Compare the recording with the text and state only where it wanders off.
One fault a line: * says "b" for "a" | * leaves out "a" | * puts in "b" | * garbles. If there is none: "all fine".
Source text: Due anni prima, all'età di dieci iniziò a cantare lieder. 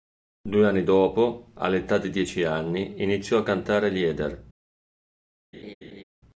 * says "dopo" for "prima"
* puts in "anni"